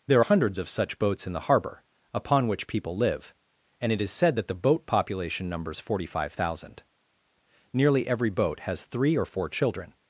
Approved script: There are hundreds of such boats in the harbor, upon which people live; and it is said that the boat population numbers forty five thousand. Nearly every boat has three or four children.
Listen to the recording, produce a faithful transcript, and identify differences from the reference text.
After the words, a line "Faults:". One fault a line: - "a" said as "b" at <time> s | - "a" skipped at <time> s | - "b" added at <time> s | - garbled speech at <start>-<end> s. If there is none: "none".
There hundreds of such boats in the harbor, upon which people live; and it is said that the boat population numbers forty five thousand. Nearly every boat has three or four children.
Faults:
- "are" skipped at 0.2 s